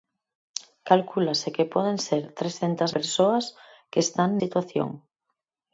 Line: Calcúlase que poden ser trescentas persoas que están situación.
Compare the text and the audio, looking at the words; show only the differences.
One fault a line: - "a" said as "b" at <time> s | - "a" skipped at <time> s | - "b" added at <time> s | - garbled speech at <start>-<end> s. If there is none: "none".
none